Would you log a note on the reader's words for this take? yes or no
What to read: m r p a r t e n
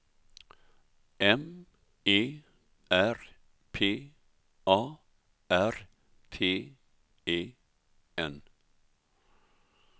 yes